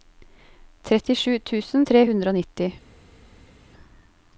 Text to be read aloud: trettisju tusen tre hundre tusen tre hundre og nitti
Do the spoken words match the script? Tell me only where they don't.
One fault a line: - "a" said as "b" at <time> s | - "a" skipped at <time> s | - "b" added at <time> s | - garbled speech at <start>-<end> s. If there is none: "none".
- "tusen tre hundre" skipped at 2.3 s